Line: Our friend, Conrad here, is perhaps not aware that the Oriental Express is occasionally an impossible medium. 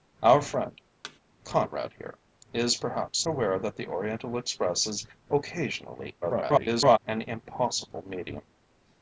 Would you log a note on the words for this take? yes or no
yes